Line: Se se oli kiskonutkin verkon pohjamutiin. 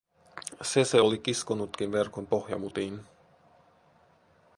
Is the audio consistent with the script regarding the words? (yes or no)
yes